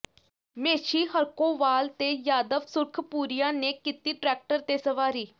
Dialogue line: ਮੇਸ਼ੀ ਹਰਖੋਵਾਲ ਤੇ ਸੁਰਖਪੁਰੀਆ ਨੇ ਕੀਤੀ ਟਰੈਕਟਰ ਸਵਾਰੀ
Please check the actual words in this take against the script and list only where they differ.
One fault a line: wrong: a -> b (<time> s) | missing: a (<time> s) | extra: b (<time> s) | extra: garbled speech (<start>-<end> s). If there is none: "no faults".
extra: ਯਾਦਵ (2.3 s)
extra: ਤੇ (4.6 s)